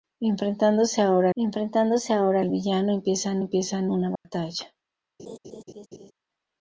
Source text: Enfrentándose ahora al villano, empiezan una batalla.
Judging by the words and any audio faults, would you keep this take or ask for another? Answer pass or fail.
fail